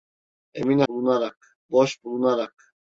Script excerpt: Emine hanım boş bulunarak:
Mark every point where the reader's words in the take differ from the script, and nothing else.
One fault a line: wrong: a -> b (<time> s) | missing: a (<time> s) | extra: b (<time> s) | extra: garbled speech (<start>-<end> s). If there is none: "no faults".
wrong: hanım -> bulunarak (0.9 s)